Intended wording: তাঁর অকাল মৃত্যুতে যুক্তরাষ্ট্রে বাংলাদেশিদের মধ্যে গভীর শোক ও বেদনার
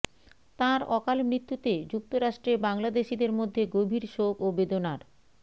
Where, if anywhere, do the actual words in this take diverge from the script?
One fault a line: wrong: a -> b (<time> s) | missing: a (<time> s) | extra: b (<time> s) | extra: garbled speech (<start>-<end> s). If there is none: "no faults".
no faults